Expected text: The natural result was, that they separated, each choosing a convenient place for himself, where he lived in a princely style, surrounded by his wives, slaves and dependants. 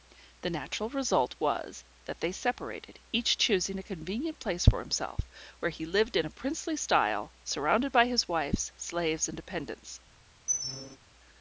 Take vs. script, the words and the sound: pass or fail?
fail